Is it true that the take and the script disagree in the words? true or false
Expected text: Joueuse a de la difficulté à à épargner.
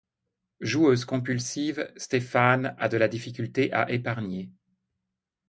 true